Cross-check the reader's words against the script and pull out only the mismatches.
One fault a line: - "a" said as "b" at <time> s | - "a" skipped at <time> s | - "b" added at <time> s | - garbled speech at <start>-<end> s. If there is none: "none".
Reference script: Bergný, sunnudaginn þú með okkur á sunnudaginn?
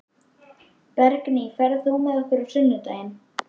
- "sunnudaginn" said as "ferð" at 1.6 s